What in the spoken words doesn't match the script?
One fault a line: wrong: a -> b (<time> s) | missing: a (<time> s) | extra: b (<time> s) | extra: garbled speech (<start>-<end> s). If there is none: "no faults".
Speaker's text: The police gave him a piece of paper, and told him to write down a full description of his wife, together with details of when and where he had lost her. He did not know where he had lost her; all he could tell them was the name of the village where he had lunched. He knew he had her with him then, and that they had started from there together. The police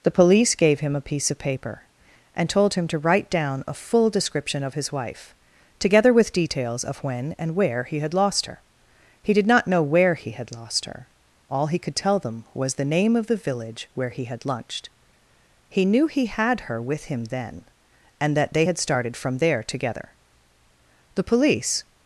no faults